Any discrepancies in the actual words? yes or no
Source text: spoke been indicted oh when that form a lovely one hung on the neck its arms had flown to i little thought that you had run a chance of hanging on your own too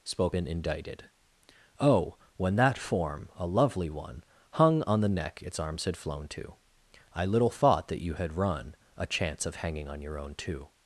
no